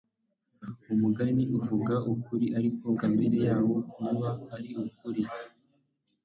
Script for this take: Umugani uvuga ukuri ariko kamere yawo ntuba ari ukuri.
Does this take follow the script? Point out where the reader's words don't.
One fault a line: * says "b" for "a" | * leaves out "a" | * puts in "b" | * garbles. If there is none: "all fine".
all fine